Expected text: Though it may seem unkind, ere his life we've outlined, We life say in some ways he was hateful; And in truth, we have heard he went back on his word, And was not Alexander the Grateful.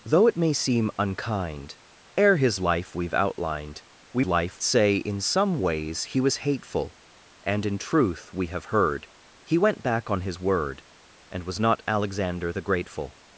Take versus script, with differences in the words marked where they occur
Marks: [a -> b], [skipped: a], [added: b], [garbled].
Though it may seem unkind, ere his life we've outlined, We life say in some ways he was hateful; And in truth, we have heard he went back on his word, And was not Alexander the Grateful.